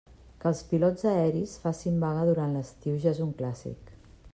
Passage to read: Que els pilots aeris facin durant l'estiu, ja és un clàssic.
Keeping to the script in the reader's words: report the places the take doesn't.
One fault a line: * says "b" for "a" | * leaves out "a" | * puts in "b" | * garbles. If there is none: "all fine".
* puts in "vaga"